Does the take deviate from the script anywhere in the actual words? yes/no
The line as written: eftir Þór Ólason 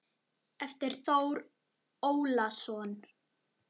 no